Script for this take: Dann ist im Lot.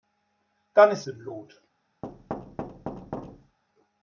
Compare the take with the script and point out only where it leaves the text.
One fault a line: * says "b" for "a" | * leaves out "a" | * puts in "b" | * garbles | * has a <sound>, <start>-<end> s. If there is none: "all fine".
* has a thud, 2.0-3.6 s